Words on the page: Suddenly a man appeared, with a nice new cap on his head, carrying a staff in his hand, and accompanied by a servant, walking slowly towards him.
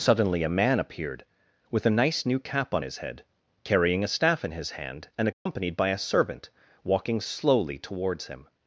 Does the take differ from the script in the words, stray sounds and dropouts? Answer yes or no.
yes